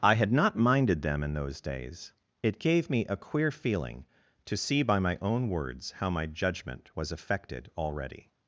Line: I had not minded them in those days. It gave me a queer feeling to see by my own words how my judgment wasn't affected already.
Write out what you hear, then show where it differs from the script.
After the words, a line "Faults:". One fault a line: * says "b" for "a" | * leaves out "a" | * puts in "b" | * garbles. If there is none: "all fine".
I had not minded them in those days. It gave me a queer feeling to see by my own words how my judgment was affected already.
Faults:
* says "was" for "wasn't"